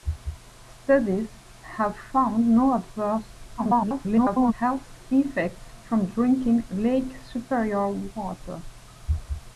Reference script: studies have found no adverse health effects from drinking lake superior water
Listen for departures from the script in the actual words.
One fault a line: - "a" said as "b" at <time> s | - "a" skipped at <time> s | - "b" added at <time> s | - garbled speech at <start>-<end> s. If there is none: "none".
- garbled speech at 3.6-4.5 s